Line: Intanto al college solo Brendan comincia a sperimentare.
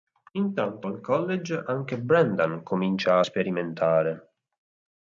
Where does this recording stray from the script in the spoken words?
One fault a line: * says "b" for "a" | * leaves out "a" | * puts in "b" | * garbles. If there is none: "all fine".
* says "anche" for "solo"